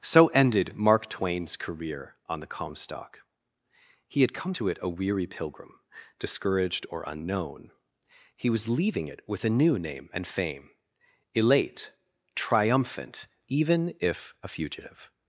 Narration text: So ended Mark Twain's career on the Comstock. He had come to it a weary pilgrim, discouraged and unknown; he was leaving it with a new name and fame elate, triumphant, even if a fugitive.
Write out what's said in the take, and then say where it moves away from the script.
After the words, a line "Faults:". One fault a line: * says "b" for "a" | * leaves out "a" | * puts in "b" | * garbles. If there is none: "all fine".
So ended Mark Twain's career on the Comstock. He had come to it a weary pilgrim, discouraged or unknown; he was leaving it with a new name and fame elate, triumphant, even if a fugitive.
Faults:
* says "or" for "and"